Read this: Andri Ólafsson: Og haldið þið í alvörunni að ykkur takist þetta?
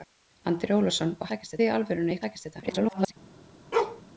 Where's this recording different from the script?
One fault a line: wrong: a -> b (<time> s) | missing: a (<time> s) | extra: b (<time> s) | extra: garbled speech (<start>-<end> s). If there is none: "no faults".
wrong: haldið -> takist (1.3 s)
missing: ykkur (2.2 s)
extra: garbled speech (2.6-3.1 s)